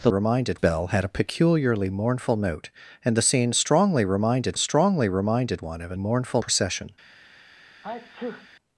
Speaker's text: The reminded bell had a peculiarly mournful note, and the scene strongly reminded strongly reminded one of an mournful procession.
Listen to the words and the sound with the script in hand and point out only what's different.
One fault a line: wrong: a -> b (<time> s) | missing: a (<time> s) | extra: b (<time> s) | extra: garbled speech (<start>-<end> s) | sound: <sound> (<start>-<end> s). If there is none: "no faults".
sound: sneeze (7.8-8.5 s)